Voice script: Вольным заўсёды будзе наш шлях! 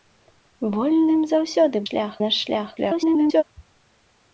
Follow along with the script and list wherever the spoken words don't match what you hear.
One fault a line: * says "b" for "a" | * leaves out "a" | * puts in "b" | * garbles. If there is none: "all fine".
* says "шлях" for "будзе"
* garbles